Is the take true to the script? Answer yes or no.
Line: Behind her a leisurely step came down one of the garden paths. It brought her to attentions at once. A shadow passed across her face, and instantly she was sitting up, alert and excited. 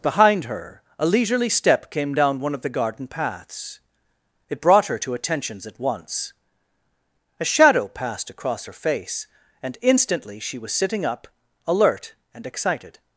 yes